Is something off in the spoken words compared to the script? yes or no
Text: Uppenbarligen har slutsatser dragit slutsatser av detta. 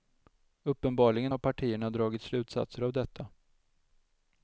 yes